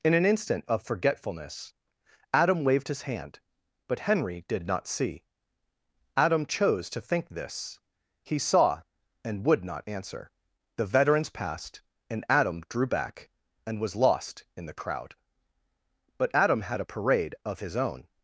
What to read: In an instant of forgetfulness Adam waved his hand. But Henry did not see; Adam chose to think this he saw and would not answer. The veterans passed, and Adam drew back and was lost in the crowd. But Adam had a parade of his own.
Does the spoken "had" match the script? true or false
true